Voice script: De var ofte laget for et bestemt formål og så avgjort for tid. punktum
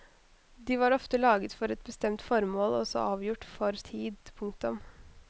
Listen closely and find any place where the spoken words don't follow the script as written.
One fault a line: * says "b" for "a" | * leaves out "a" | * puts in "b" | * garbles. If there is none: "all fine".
all fine